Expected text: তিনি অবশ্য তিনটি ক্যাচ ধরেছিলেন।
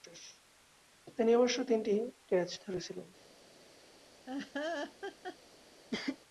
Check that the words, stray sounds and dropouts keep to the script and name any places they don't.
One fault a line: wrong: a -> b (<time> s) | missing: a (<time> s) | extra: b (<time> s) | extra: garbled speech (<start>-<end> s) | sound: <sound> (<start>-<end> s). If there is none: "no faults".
sound: laugh (4.3-5.4 s)
sound: cough (5.9-6.2 s)